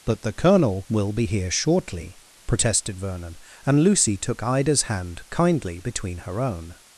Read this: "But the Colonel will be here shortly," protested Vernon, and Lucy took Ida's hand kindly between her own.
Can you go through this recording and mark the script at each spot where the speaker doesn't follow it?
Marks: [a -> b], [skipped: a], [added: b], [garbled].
"But the Colonel will be here shortly," protested Vernon, and Lucy took Ida's hand kindly between her own.